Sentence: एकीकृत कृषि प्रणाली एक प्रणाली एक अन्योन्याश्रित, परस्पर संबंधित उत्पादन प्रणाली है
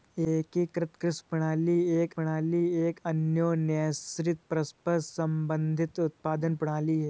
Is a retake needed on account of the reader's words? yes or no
no